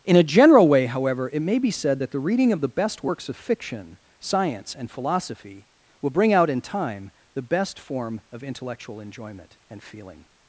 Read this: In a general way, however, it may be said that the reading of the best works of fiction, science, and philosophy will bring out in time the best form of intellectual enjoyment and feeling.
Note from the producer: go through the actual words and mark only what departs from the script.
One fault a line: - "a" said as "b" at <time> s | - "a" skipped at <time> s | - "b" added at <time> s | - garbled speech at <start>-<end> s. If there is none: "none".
none